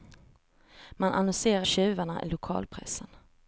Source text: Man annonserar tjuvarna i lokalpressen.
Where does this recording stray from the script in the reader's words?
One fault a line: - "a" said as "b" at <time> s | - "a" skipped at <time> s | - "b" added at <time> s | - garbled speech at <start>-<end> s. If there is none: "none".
none